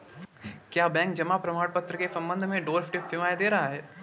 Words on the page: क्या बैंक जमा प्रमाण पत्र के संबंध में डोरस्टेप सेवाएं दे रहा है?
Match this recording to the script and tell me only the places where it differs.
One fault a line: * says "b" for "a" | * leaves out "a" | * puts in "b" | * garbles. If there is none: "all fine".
all fine